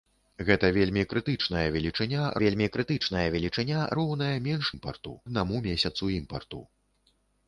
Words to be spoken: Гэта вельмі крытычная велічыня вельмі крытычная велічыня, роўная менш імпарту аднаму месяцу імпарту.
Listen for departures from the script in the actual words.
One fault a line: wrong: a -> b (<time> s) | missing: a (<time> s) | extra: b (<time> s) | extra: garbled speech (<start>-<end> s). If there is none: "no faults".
no faults